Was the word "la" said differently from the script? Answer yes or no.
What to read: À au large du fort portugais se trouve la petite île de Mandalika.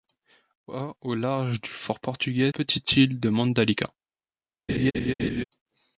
yes